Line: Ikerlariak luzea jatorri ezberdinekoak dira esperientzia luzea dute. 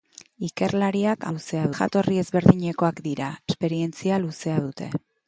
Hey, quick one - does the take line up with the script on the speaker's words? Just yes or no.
yes